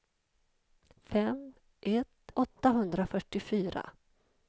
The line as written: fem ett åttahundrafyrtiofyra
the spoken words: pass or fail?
pass